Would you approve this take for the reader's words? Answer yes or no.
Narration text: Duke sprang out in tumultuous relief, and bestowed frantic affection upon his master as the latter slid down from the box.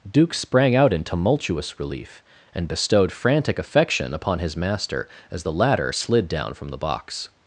yes